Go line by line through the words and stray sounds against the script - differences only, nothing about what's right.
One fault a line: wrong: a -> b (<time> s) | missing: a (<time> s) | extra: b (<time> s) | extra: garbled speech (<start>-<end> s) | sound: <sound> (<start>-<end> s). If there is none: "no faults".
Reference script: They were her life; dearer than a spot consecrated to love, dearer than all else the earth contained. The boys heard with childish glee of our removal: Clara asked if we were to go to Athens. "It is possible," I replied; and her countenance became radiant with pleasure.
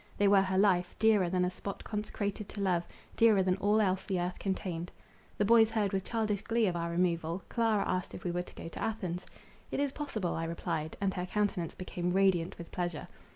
no faults